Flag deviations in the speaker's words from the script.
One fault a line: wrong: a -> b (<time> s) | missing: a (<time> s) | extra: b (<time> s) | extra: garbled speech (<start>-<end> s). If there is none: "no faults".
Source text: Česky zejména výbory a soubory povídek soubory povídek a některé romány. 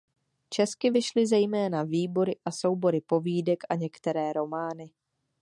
extra: vyšly (0.9 s)
missing: soubory povídek (3.6 s)